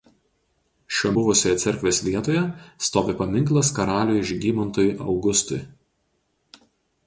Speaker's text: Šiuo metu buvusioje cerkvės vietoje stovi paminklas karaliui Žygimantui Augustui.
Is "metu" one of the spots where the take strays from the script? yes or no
yes